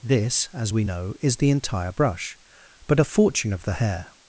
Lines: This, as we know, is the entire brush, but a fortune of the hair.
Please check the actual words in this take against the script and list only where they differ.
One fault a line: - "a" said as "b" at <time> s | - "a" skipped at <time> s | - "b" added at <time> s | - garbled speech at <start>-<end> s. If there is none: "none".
none